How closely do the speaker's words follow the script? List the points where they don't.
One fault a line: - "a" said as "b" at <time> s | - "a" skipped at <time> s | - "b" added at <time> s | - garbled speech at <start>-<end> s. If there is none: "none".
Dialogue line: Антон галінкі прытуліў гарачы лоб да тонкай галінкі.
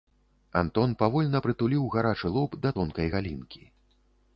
- "галінкі" said as "павольна" at 1.0 s